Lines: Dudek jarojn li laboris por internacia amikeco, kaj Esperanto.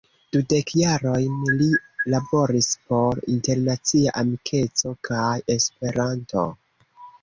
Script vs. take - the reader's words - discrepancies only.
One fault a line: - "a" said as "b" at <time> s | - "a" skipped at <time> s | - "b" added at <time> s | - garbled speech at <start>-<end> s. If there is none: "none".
none